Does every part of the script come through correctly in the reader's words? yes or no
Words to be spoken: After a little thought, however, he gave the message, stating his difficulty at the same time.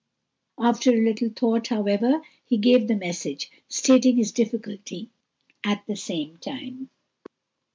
yes